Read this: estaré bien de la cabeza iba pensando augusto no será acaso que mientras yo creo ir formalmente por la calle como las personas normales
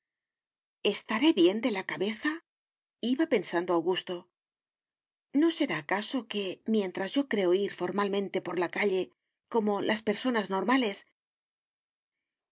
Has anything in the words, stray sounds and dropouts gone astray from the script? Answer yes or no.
no